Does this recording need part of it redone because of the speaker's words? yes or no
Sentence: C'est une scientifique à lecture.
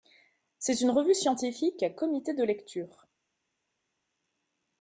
yes